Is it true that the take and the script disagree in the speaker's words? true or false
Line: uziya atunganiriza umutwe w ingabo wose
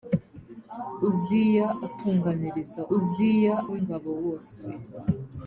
true